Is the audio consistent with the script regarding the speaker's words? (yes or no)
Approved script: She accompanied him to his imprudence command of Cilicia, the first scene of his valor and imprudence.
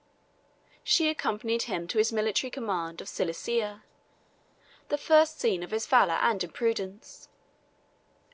no